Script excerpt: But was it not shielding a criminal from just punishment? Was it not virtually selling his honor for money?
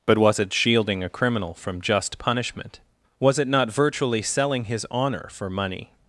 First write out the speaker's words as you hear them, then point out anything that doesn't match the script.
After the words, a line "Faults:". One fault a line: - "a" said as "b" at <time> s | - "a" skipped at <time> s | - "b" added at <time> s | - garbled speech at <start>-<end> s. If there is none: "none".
But was it shielding a criminal from just punishment? Was it not virtually selling his honor for money?
Faults:
- "not" skipped at 0.5 s